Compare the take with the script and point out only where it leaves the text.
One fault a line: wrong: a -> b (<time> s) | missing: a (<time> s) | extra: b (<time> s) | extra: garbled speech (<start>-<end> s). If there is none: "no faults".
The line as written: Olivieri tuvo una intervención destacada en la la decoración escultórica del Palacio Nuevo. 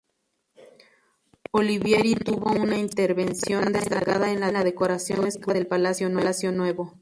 no faults